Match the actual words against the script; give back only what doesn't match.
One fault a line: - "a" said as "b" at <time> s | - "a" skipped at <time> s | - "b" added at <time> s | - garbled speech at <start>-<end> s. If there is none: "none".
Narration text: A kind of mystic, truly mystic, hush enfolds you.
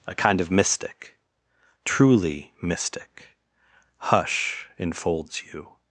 none